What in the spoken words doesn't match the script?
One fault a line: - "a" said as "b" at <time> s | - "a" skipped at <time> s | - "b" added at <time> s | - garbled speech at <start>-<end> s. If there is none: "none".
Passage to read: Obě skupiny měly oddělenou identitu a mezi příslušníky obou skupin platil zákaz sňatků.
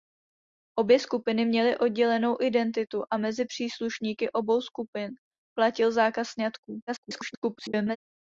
- garbled speech at 6.9-8.0 s